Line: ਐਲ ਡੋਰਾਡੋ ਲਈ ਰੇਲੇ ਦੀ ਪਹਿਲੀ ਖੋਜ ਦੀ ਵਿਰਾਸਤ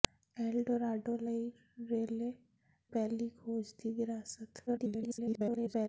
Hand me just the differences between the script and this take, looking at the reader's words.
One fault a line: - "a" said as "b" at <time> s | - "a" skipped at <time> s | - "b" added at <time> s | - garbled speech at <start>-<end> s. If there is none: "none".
- "ਦੀ" skipped at 2.3 s
- garbled speech at 4.7-5.9 s